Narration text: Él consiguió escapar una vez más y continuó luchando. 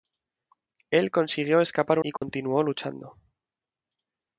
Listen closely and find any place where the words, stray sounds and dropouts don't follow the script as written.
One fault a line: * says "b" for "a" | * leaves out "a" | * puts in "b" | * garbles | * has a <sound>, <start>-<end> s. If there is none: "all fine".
* leaves out "una vez más"
* has a dropout, 2.2-2.2 s